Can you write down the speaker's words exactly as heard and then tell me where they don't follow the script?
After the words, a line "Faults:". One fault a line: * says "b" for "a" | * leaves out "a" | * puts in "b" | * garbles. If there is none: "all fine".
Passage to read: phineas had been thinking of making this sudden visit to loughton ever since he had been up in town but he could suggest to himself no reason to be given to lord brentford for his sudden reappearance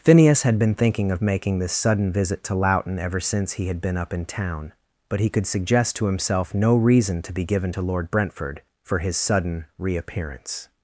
phineas had been thinking of making this sudden visit to loughton ever since he had been up in town but he could suggest to himself no reason to be given to lord brentford for his sudden reappearance
Faults:
all fine